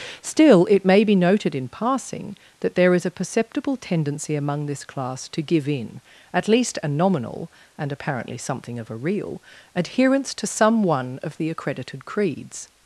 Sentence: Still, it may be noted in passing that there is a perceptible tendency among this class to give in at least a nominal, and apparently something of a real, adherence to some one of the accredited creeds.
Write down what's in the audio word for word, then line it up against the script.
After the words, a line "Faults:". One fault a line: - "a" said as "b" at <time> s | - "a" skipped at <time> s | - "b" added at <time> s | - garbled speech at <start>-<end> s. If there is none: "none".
Still, it may be noted in passing that there is a perceptible tendency among this class to give in at least a nominal, and apparently something of a real, adherence to some one of the accredited creeds.
Faults:
none